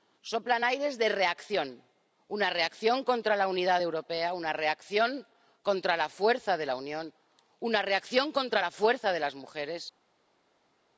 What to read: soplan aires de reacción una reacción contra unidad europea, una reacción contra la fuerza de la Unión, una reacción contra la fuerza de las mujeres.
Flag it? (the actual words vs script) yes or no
yes